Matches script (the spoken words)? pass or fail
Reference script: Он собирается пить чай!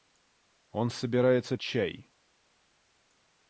fail